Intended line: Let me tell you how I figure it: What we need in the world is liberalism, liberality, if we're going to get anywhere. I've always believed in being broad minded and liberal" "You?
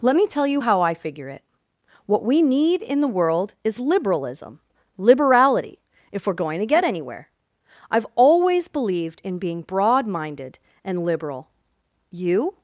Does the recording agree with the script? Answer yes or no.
yes